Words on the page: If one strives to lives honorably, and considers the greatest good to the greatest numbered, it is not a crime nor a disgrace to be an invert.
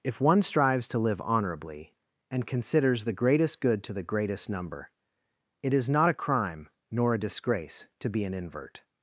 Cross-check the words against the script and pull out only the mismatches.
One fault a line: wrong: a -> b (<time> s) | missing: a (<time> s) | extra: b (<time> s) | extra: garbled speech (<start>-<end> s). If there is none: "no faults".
wrong: lives -> live (1.0 s)
wrong: numbered -> number (4.5 s)